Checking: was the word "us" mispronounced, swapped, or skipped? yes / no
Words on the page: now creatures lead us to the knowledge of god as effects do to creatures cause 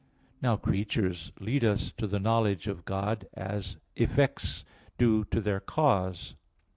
no